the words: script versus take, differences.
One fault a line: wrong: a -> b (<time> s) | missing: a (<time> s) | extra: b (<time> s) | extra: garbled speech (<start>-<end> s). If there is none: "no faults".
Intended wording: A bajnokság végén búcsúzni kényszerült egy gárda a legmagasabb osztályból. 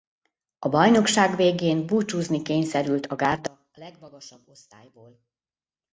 wrong: egy -> a (3.0 s)